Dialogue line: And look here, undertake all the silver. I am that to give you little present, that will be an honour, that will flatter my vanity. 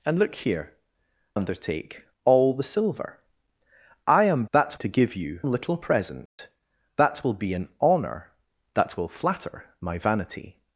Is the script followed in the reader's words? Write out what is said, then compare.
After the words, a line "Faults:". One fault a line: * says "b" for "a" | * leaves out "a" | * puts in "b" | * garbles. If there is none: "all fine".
And look here, undertake all the silver. I am that to give you little present, that will be an honour, that will flatter my vanity.
Faults:
all fine